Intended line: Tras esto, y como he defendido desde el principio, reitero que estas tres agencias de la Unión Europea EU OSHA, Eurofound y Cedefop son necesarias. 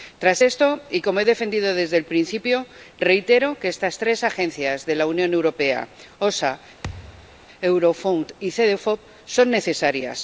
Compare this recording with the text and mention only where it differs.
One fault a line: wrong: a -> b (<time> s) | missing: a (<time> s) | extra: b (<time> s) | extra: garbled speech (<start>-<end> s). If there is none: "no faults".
no faults